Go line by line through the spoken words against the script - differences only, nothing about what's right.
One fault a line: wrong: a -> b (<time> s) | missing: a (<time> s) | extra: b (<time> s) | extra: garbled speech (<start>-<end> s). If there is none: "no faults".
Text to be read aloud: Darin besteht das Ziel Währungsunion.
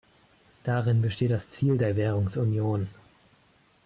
extra: der (1.8 s)